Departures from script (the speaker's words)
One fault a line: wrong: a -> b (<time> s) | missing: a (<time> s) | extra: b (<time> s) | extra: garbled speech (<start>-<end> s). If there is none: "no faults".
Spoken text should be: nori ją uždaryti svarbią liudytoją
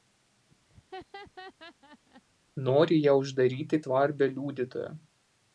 no faults